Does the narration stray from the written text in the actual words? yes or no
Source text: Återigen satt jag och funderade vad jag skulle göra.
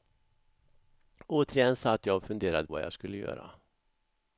no